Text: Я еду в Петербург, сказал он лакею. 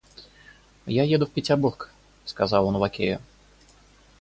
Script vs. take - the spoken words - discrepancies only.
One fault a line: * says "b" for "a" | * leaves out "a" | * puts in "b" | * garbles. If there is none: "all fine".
all fine